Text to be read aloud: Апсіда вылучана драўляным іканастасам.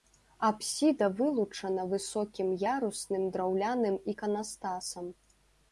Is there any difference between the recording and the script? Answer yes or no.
yes